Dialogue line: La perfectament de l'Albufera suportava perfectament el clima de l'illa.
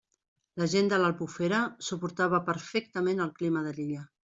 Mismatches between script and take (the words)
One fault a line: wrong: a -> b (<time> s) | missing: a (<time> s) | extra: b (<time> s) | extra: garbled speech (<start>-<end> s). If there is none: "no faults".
wrong: perfectament -> gent (0.7 s)